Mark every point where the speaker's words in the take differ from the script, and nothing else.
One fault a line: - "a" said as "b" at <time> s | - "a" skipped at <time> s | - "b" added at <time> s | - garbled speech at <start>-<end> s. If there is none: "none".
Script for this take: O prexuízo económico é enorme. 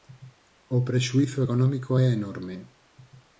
none